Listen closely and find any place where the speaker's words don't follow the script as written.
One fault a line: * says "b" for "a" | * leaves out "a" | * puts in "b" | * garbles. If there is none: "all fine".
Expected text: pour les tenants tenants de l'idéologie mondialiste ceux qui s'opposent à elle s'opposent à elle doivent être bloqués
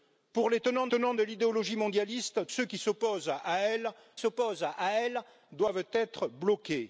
all fine